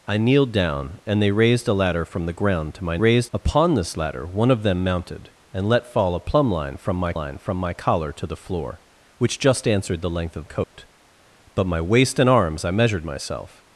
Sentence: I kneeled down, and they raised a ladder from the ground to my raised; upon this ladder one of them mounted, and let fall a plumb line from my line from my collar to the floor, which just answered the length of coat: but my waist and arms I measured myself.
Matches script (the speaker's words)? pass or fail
pass